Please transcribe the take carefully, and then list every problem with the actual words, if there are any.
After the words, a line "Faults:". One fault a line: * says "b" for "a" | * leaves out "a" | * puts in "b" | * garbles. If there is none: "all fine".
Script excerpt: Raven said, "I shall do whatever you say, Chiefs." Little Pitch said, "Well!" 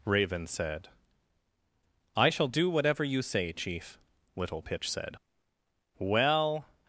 Raven said, "I shall do whatever you say, Chief." Little Pitch said, "Well!"
Faults:
* says "Chief" for "Chiefs"